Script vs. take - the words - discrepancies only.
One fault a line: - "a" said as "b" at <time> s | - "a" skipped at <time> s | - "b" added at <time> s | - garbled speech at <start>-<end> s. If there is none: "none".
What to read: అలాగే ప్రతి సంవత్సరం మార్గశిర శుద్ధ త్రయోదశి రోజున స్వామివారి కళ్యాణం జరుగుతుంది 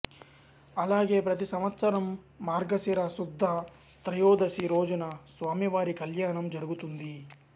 none